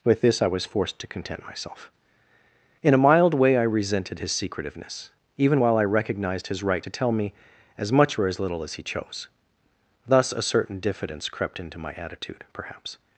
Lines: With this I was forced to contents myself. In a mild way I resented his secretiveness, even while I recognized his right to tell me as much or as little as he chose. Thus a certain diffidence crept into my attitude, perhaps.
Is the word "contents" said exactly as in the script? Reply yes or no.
no